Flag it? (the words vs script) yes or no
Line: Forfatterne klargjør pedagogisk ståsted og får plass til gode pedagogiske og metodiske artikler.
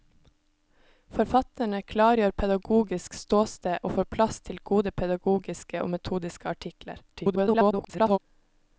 yes